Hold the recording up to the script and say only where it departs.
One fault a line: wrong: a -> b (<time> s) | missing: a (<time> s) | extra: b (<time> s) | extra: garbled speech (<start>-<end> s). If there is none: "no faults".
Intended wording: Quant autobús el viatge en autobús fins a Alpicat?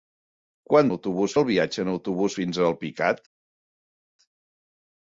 no faults